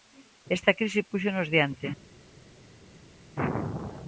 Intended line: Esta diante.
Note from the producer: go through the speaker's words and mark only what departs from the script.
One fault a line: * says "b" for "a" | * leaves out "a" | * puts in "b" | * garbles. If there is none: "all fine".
* puts in "crise púxonos"